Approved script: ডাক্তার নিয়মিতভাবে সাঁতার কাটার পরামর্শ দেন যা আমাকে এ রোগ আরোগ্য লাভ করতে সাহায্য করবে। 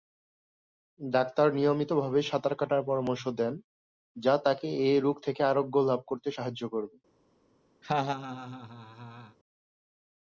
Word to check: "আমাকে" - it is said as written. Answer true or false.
false